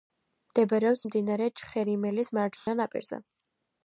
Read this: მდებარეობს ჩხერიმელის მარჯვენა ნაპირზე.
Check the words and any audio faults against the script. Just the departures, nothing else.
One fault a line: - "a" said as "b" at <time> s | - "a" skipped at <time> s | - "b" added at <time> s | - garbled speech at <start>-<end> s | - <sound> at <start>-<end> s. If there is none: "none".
- "მდინარე" added at 1.1 s
- dropout at 2.6-2.7 s